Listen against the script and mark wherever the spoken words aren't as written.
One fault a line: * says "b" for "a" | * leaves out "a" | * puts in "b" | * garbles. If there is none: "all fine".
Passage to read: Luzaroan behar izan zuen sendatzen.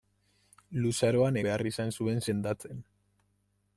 all fine